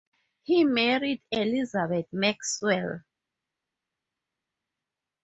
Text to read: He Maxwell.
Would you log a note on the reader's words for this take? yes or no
yes